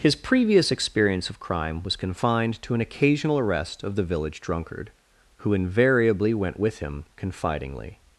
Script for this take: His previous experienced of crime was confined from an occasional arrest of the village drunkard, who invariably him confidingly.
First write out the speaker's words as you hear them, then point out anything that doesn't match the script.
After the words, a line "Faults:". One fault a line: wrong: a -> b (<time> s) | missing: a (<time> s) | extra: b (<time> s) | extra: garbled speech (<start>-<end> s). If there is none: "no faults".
His previous experience of crime was confined to an occasional arrest of the village drunkard, who invariably went with him confidingly.
Faults:
wrong: experienced -> experience (0.7 s)
wrong: from -> to (2.6 s)
extra: went with (6.3 s)